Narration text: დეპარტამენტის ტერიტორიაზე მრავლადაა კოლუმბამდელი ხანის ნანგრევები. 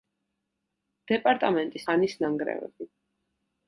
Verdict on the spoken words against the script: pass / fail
fail